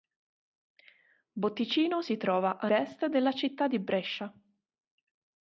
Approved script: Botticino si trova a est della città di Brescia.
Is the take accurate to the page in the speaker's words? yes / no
yes